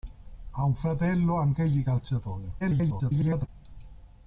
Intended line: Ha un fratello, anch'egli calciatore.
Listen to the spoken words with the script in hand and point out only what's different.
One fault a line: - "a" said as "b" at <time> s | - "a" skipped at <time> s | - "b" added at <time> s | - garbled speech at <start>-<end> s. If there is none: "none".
- garbled speech at 2.6-3.5 s